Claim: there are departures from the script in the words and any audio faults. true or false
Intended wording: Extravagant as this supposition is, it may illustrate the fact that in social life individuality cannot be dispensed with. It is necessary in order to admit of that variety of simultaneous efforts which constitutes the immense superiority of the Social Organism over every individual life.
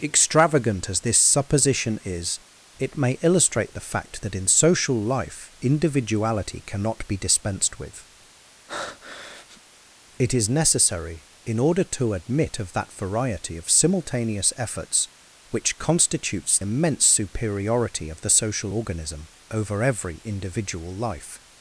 true